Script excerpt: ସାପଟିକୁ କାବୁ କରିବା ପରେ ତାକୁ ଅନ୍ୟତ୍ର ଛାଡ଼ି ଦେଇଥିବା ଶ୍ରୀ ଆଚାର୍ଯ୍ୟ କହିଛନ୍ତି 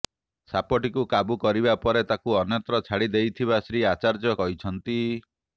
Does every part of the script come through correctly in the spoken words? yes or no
yes